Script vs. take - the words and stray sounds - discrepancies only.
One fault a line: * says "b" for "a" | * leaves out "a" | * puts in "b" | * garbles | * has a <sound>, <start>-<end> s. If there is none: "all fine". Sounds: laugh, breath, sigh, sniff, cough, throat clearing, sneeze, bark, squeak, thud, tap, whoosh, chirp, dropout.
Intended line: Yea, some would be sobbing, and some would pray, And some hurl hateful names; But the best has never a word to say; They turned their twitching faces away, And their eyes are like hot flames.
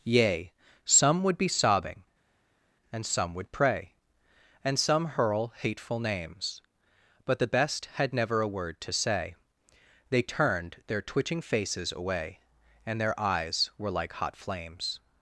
* says "had" for "has"
* says "were" for "are"